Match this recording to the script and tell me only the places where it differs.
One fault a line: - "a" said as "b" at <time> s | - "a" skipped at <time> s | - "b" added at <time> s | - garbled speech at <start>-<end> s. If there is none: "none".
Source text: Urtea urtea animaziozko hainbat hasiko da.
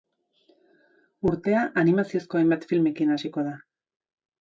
- "urtea" skipped at 1.6 s
- "filmekin" added at 2.7 s